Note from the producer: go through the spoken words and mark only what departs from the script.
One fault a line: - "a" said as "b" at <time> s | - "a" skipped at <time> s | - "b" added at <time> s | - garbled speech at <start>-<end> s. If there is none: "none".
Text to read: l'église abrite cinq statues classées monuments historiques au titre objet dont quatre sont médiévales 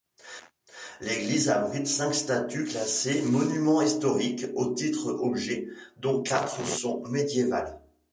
none